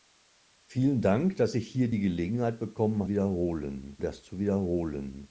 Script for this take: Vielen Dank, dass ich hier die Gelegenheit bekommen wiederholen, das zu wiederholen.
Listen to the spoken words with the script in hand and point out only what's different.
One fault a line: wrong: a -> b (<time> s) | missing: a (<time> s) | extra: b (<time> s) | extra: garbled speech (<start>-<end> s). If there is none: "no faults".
no faults